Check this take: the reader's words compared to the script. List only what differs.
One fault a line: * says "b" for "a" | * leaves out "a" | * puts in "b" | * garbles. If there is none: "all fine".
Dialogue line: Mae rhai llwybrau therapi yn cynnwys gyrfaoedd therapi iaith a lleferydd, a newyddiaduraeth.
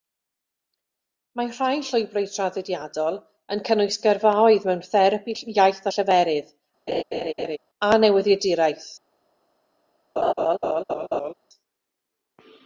* says "traddodiadol" for "therapi"
* puts in "mewn"